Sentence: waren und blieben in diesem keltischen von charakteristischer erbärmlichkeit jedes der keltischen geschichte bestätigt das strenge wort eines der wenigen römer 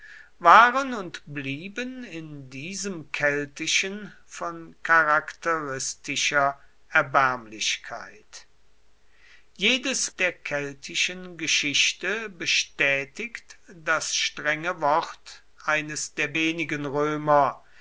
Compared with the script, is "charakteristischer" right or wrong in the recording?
right